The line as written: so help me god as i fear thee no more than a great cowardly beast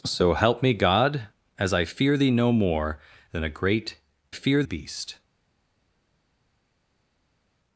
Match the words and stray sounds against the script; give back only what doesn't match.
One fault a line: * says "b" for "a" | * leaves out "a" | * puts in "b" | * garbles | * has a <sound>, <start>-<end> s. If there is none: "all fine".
* says "fear" for "cowardly"